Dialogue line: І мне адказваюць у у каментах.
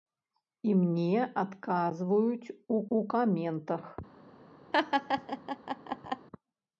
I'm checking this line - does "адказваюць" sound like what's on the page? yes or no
yes